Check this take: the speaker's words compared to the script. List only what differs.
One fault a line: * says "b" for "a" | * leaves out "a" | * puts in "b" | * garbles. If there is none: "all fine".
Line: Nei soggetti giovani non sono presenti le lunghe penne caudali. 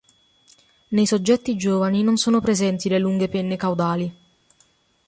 all fine